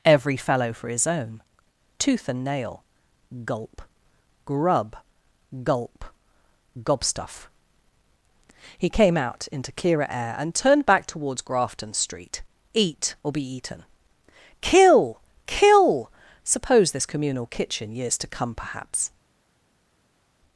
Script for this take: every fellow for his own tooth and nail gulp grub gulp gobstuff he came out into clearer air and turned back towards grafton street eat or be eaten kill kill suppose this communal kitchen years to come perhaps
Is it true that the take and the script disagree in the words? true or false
false